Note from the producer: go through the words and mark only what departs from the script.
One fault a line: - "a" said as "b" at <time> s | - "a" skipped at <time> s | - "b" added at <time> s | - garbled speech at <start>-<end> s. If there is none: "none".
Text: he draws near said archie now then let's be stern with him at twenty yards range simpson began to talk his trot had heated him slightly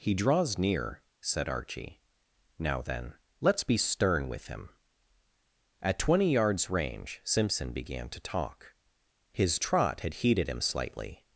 none